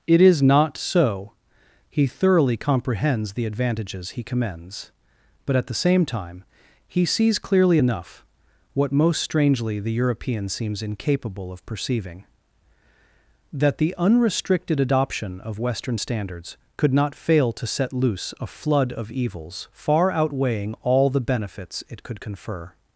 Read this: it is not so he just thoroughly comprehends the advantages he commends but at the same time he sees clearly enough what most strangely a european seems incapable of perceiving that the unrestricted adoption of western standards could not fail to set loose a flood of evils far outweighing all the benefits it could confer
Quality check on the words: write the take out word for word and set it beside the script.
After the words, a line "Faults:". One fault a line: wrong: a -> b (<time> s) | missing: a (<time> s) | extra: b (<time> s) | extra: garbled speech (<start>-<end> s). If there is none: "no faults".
it is not so he thoroughly comprehends the advantages he commends but at the same time he sees clearly enough what most strangely the european seems incapable of perceiving that the unrestricted adoption of western standards could not fail to set loose a flood of evils far outweighing all the benefits it could confer
Faults:
missing: just (2.1 s)
wrong: a -> the (9.8 s)